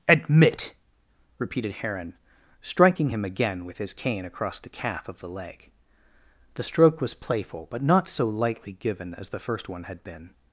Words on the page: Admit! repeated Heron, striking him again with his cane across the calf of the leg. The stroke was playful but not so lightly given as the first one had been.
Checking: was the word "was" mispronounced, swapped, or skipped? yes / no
no